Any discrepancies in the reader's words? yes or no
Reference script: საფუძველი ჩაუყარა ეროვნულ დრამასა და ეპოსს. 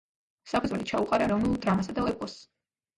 no